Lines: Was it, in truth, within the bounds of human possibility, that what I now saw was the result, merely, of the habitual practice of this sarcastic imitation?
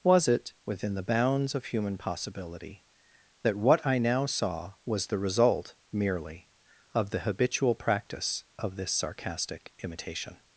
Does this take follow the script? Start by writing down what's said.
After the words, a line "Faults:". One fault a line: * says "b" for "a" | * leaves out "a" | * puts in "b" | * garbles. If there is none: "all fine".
Was it, within the bounds of human possibility, that what I now saw was the result, merely, of the habitual practice of this sarcastic imitation?
Faults:
* leaves out "in truth"